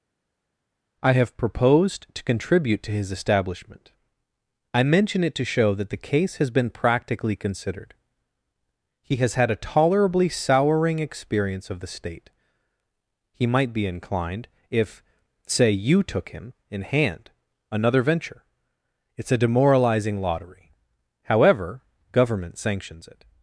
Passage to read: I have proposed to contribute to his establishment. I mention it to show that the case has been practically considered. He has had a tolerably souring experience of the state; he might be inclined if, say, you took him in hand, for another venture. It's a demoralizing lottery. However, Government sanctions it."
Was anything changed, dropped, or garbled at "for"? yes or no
yes